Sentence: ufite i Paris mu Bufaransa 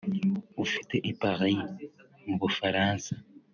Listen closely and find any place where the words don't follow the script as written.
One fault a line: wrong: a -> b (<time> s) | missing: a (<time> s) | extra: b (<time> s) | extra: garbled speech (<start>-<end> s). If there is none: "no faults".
no faults